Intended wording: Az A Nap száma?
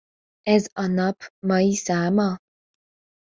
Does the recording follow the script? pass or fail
fail